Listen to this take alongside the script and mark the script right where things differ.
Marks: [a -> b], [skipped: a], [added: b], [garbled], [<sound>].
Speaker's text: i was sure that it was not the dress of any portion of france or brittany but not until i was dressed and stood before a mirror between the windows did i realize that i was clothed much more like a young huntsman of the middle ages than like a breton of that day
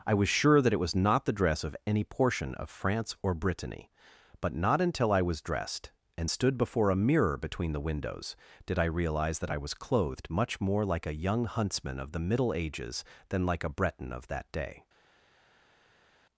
i was sure that it was not the dress of any portion of france or brittany but not until i was dressed and stood before a mirror between the windows did i realize that i was clothed much more like a young huntsman of the middle ages than like a breton of that day